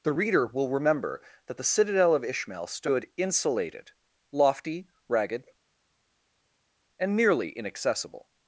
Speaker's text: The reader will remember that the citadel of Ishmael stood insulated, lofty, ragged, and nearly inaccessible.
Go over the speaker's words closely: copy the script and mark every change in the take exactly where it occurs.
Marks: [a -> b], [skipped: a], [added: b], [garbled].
The reader will remember that the citadel of Ishmael stood insulated, lofty, ragged, and nearly inaccessible.